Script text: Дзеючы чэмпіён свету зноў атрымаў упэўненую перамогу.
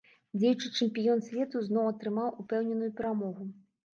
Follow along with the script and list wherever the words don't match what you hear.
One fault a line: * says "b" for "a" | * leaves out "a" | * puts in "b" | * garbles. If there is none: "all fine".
all fine